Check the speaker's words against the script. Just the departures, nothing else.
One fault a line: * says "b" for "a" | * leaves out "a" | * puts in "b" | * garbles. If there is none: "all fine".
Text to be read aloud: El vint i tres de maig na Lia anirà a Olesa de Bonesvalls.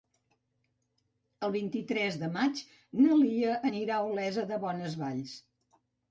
all fine